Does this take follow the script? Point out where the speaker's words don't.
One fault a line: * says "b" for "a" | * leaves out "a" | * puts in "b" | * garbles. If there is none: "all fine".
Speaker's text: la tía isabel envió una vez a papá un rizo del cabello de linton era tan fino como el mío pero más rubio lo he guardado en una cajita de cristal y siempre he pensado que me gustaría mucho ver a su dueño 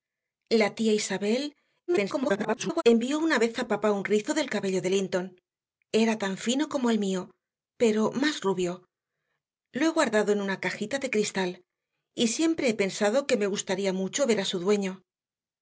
* garbles